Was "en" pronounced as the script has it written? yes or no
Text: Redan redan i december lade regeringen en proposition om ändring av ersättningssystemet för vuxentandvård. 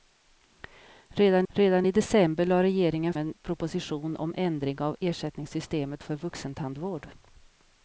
yes